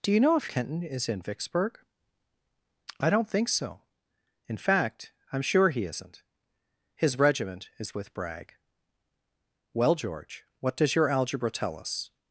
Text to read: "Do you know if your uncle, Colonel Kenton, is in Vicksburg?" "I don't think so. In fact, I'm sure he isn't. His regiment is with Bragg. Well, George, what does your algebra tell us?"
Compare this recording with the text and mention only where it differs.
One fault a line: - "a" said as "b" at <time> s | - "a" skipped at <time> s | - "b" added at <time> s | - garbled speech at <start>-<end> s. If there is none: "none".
- "your uncle Colonel" skipped at 0.5 s